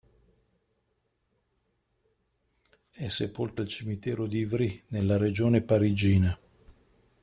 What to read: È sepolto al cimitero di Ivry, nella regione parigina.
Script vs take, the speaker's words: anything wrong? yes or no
no